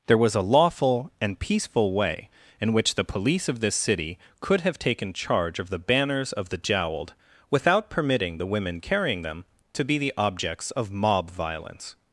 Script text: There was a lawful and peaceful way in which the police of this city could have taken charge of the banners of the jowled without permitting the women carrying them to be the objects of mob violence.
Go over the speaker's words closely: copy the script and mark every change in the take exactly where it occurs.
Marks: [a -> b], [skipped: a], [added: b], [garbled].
There was a lawful and peaceful way in which the police of this city could have taken charge of the banners of the jowled without permitting the women carrying them to be the objects of mob violence.